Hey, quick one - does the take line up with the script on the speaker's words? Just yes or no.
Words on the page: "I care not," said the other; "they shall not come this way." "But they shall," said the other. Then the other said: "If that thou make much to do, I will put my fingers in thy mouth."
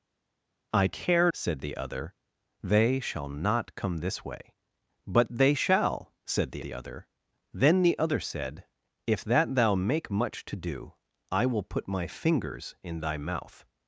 no